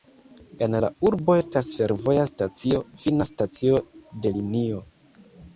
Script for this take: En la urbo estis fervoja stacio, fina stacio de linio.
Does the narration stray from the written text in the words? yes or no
yes